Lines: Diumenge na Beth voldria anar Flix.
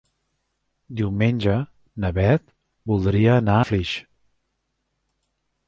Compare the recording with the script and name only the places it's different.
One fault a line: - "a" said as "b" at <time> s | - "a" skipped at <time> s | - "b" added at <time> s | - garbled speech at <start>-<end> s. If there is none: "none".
none